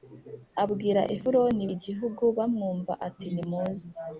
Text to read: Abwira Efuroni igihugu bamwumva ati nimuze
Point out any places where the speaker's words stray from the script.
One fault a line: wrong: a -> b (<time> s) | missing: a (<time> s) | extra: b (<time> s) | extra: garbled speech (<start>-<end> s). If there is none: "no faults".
no faults